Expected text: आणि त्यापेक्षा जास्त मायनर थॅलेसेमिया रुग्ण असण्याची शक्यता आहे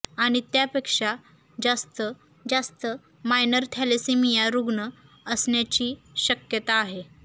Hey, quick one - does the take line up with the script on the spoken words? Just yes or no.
no